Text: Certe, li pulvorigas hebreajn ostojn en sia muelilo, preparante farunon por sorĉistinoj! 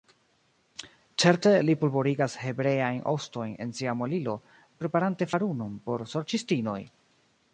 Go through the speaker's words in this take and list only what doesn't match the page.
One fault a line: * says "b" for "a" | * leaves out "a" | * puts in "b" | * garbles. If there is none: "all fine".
all fine